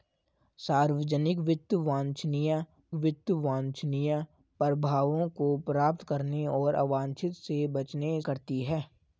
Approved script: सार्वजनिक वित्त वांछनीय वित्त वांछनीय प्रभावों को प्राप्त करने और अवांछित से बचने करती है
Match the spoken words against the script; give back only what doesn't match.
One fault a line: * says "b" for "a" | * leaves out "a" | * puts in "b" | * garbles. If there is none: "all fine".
all fine